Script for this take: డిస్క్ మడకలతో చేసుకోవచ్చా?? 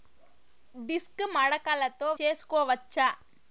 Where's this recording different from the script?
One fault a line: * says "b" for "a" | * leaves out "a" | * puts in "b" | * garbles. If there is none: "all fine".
all fine